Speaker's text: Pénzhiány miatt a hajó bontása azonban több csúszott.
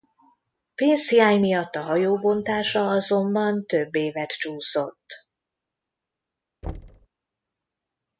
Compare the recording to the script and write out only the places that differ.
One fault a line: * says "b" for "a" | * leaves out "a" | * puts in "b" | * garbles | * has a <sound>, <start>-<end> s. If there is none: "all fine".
* puts in "évet"
* has a thud, 6.6-7.1 s